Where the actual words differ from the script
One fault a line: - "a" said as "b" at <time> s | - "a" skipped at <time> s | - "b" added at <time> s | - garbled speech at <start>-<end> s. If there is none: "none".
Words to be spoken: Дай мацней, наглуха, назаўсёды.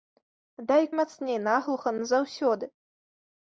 none